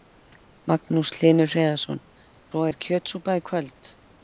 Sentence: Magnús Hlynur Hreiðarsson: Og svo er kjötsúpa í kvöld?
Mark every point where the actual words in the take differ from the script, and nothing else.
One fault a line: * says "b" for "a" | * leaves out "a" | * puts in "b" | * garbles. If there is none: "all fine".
* leaves out "Og"